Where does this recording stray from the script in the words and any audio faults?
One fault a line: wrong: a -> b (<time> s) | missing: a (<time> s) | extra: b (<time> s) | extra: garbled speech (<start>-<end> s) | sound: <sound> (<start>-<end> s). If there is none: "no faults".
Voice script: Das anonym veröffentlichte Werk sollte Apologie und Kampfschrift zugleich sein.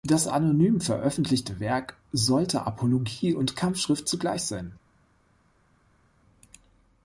no faults